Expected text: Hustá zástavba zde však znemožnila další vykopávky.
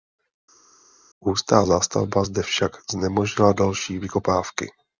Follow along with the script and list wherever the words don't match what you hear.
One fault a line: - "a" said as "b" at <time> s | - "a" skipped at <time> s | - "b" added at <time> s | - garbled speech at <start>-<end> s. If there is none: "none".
none